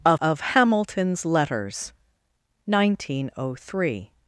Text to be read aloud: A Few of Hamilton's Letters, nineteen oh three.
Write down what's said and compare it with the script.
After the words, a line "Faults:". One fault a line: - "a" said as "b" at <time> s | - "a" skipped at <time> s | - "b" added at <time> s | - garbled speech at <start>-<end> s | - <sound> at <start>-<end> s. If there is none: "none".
A Of Hamilton's Letters, nineteen oh three.
Faults:
- "Few" skipped at 0.2 s